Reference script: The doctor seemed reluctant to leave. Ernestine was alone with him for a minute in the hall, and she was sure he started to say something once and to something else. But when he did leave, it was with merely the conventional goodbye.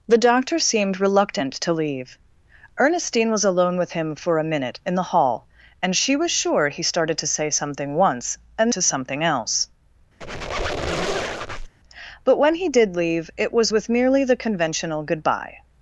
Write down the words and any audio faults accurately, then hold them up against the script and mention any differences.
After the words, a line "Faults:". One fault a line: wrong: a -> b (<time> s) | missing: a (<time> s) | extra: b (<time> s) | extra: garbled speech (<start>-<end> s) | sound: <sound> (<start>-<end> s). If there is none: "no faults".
The doctor seemed reluctant to leave. Ernestine was alone with him for a minute in the hall, and she was sure he started to say something once and to something else. But when he did leave, it was with merely the conventional goodbye.
Faults:
sound: squeak (10.2-11.7 s)